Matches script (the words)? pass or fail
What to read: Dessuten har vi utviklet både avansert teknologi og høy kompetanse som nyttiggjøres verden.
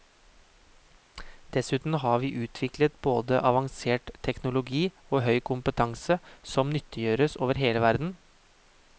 fail